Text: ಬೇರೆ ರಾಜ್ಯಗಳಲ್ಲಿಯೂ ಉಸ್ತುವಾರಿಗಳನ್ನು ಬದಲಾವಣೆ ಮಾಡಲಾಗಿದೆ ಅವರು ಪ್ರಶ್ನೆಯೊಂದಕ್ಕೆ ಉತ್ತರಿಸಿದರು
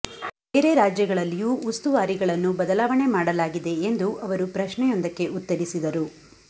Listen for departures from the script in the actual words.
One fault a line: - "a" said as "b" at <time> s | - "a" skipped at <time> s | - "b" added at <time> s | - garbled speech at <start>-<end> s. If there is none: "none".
- "ಎಂದು" added at 3.9 s